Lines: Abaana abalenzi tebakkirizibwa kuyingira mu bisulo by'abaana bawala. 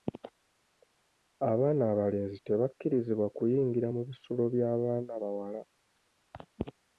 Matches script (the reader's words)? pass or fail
pass